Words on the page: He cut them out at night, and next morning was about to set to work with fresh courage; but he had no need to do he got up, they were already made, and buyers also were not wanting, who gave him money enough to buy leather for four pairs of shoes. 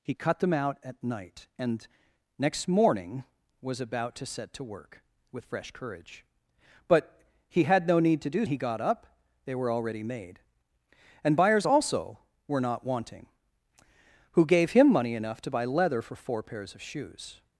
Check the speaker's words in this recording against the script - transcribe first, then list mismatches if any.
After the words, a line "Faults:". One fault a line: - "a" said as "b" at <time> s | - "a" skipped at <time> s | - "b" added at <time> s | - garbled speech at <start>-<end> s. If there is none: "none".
He cut them out at night, and next morning was about to set to work with fresh courage; but he had no need to do he got up, they were already made, and buyers also were not wanting, who gave him money enough to buy leather for four pairs of shoes.
Faults:
none